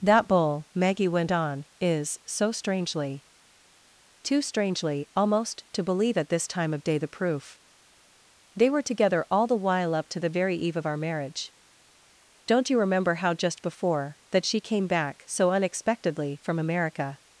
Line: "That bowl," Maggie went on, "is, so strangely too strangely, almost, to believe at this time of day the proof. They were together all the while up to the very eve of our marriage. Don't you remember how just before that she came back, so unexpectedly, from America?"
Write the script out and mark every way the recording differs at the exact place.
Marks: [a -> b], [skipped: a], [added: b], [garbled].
"That bowl," Maggie went on, "is, so strangely too strangely, almost, to believe at this time of day the proof. They were together all the while up to the very eve of our marriage. Don't you remember how just before that she came back, so unexpectedly, from America?"